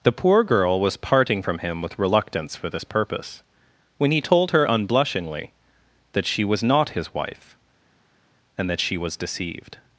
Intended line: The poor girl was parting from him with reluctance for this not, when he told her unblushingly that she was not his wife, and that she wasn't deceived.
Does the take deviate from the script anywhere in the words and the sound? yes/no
yes